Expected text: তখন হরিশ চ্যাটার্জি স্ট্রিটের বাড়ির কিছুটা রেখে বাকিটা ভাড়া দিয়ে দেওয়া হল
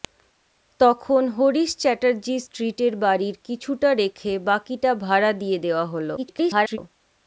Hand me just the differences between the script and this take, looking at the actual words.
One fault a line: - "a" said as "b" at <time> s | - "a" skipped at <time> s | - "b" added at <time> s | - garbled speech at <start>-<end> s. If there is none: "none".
- garbled speech at 6.2-6.8 s